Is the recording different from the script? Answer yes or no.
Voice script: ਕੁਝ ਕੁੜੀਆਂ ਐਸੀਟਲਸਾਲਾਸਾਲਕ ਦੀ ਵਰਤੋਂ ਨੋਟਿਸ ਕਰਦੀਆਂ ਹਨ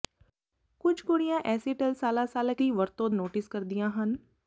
no